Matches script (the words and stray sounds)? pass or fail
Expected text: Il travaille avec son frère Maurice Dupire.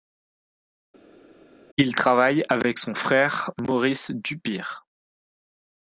pass